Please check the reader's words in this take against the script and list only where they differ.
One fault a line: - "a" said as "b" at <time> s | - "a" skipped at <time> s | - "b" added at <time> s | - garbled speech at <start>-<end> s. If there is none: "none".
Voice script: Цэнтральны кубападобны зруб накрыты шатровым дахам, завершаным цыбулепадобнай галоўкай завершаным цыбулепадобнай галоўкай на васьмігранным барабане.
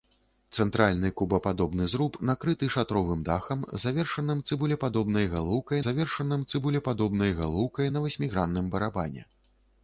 none